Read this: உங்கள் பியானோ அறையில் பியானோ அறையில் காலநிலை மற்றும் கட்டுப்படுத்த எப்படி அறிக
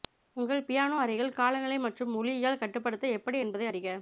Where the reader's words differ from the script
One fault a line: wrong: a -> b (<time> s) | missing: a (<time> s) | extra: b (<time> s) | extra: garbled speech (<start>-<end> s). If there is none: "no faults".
missing: பியானோ அறையில் (1.3 s)
extra: ஒலியியல் (2.1 s)
extra: என்பதை (3.4 s)